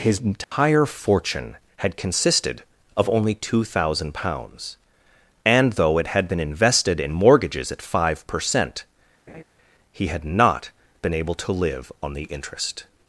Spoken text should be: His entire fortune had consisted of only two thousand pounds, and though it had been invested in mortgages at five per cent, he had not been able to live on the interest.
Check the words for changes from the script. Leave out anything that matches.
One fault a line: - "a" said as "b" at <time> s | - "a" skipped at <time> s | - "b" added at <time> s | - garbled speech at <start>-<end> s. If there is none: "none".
none